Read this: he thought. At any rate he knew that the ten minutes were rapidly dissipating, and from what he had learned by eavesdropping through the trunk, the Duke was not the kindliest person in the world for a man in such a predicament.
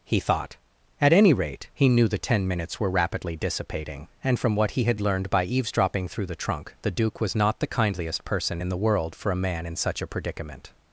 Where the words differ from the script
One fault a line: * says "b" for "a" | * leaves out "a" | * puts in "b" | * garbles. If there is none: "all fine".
* leaves out "that"